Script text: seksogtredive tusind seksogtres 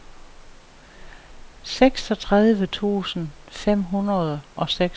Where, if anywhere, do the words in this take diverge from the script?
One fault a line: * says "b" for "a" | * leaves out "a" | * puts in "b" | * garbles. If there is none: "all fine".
* puts in "fem hundrede og"